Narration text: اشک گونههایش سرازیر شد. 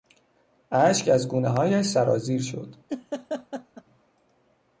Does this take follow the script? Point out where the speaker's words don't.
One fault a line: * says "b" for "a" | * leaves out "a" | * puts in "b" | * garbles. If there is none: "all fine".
* puts in "از"